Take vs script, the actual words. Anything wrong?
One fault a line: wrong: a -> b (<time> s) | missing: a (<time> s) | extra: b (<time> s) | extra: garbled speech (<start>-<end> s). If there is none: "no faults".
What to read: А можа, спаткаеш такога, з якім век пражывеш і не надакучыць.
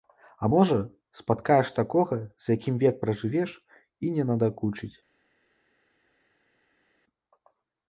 no faults